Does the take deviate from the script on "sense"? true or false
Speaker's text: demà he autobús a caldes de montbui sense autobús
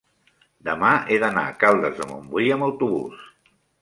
true